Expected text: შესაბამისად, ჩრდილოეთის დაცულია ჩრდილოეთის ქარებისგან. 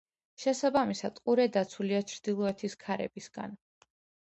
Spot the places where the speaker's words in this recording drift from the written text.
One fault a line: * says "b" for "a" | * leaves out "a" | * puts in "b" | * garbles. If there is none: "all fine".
* says "ყურე" for "ჩრდილოეთის"